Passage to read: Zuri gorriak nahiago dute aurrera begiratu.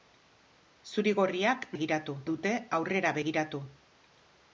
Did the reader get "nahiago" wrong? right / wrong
wrong